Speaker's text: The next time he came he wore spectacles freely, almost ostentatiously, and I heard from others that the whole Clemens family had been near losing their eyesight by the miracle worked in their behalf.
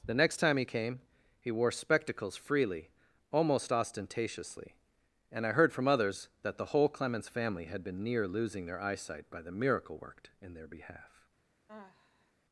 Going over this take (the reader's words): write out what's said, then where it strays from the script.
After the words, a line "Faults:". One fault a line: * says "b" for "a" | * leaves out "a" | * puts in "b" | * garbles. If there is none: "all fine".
The next time he came he wore spectacles freely, almost ostentatiously, and I heard from others that the whole Clemens family had been near losing their eyesight by the miracle worked in their behalf.
Faults:
all fine